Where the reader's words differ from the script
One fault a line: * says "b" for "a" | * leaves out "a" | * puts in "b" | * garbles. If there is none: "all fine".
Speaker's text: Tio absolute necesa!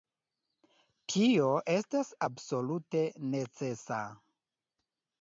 * puts in "estas"